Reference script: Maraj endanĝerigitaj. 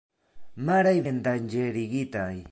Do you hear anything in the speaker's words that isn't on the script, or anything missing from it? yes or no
no